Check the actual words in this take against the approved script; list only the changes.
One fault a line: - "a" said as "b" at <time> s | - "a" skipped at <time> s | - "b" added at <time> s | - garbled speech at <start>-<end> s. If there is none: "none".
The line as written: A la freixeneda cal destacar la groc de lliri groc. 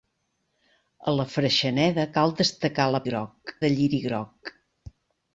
none